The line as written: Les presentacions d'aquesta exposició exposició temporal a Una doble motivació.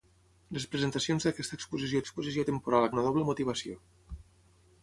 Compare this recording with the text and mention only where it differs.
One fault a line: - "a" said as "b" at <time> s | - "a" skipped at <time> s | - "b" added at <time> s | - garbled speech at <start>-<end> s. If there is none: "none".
none